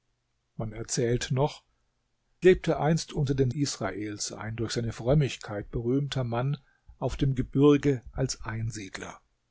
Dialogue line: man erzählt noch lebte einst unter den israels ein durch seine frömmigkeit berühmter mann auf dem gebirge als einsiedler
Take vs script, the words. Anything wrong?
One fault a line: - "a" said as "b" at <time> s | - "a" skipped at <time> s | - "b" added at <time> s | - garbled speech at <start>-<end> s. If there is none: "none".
none